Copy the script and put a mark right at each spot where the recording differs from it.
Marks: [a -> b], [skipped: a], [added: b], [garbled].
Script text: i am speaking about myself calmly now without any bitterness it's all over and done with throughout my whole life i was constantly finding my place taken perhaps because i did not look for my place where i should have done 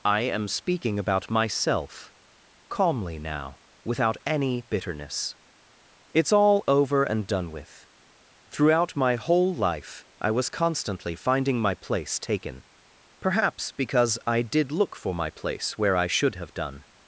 i am speaking about myself calmly now without any bitterness it's all over and done with throughout my whole life i was constantly finding my place taken perhaps because i did [skipped: not] look for my place where i should have done